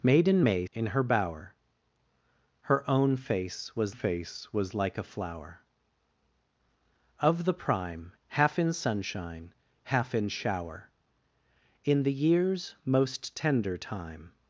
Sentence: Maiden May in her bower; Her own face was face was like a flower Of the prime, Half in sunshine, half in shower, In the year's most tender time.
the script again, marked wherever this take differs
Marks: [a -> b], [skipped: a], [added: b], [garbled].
Maiden May in her bower; Her own face was face was like a flower Of the prime, Half in sunshine, half in shower, In the year's most tender time.